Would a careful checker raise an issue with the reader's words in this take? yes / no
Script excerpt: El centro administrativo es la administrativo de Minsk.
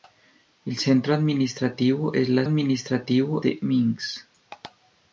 no